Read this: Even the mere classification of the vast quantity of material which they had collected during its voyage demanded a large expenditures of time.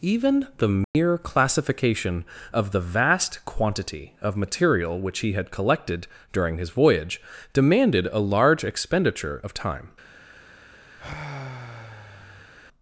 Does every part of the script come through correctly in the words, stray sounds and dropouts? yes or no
no